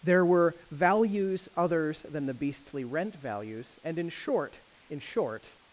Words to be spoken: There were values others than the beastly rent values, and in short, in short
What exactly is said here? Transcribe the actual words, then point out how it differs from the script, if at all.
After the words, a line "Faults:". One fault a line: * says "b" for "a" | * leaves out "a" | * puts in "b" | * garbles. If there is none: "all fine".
There were values others than the beastly rent values, and in short, in short
Faults:
all fine